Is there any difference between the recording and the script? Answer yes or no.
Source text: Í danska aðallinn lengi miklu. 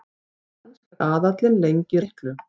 no